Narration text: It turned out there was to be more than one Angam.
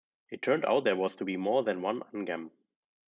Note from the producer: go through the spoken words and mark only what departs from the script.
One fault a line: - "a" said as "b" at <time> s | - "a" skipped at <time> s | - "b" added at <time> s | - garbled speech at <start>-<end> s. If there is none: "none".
none